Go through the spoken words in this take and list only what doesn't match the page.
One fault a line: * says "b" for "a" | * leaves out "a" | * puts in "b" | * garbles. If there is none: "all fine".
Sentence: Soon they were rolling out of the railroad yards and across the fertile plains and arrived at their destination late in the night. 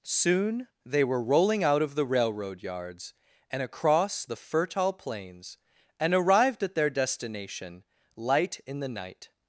* says "light" for "late"